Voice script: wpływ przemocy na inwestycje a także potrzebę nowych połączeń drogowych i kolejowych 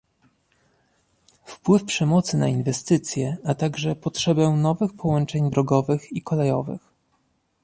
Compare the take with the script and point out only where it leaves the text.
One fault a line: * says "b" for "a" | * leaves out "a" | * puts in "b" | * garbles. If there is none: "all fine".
all fine